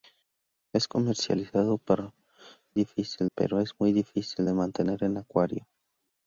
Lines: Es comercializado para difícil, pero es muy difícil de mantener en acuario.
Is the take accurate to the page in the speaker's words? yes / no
yes